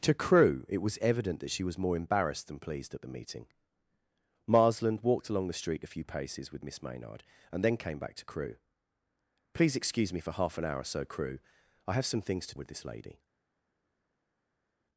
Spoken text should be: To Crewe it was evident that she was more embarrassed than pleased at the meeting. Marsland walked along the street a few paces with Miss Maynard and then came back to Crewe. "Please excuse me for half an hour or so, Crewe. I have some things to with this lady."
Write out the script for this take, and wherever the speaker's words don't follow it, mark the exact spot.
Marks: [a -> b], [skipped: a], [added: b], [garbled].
To Crewe it was evident that she was more embarrassed than pleased at the meeting. Marsland walked along the street a few paces with Miss Maynard and then came back to Crewe. "Please excuse me for half an hour or so, Crewe. I have some things to with this lady."